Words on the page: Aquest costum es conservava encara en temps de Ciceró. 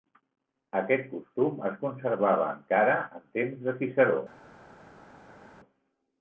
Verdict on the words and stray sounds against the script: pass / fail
pass